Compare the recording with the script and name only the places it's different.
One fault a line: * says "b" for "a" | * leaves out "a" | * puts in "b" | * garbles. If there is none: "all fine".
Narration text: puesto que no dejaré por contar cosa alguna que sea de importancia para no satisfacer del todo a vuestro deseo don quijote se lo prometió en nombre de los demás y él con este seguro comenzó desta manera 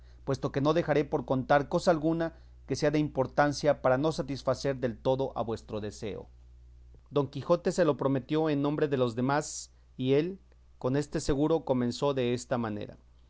all fine